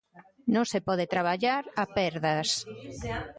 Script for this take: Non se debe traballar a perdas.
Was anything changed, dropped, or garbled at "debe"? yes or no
yes